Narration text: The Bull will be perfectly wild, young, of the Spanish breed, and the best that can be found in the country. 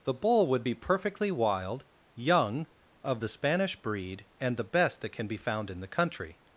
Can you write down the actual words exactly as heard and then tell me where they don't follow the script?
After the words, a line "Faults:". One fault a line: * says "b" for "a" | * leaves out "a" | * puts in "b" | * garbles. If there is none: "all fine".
The Bull would be perfectly wild, young, of the Spanish breed, and the best that can be found in the country.
Faults:
* says "would" for "will"